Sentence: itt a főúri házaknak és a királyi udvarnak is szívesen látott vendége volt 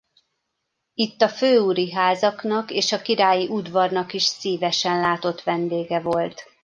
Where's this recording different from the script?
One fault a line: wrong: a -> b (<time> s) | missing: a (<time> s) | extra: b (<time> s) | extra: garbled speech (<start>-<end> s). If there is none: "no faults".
no faults